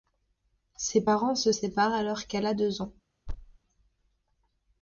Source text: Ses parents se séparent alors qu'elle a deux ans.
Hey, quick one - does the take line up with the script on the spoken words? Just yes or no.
yes